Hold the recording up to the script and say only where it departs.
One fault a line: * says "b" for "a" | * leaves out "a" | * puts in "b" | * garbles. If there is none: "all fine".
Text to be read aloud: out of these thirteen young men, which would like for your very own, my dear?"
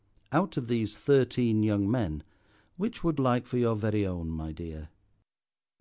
all fine